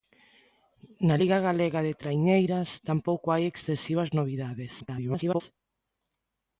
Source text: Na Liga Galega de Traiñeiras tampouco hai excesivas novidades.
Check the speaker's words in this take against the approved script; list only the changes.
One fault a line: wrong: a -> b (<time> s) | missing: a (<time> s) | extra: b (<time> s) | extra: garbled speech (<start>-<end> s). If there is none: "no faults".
extra: garbled speech (4.8-5.4 s)